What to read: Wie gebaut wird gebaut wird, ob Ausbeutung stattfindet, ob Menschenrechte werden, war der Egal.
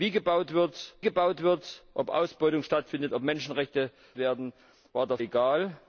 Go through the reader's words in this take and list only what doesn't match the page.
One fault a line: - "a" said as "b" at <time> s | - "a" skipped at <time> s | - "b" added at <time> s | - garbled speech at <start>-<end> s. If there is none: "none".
none